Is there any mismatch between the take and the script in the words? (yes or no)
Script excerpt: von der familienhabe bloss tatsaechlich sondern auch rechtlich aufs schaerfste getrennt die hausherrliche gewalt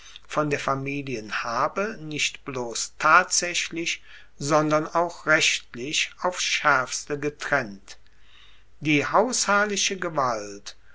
yes